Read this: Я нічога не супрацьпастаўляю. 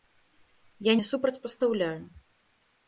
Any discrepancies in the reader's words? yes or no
yes